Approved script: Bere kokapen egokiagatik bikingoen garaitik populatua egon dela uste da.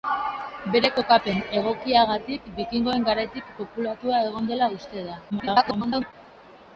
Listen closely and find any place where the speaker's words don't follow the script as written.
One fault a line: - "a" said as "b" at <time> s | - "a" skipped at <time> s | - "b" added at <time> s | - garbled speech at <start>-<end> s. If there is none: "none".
- garbled speech at 5.3-6.1 s